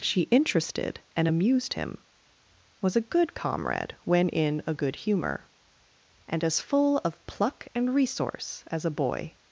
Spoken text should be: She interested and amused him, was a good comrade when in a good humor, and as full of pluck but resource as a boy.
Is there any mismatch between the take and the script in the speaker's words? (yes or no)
yes